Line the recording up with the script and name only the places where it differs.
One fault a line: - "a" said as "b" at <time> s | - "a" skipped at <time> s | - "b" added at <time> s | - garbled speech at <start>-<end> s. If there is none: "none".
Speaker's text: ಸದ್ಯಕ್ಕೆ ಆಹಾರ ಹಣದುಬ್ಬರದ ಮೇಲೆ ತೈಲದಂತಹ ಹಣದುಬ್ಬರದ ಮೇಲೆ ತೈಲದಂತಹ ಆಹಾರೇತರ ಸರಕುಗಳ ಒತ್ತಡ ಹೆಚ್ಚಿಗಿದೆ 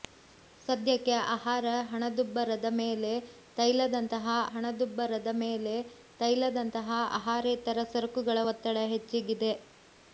none